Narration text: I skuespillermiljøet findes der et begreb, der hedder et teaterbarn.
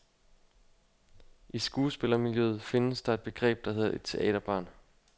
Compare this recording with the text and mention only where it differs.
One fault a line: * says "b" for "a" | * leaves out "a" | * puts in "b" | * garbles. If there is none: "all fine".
all fine